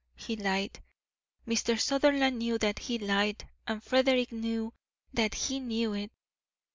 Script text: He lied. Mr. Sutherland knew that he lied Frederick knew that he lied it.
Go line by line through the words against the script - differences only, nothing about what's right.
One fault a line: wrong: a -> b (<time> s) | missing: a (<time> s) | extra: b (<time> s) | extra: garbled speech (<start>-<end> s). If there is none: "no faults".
extra: and (3.7 s)
wrong: lied -> knew (5.6 s)